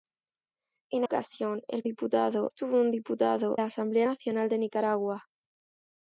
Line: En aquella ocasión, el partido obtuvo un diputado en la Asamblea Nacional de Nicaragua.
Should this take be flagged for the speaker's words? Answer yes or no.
yes